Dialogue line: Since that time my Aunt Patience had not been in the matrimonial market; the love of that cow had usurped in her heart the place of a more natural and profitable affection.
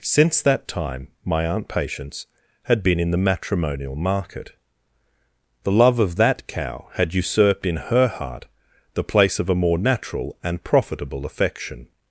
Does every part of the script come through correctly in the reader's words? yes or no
no